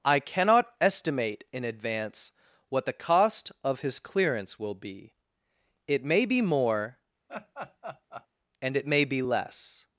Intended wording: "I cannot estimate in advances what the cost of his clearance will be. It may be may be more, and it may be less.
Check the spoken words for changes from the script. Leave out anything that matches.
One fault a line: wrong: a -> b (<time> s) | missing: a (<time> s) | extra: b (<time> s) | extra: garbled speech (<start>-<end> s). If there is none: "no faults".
wrong: advances -> advance (1.6 s)
missing: may be (6.4 s)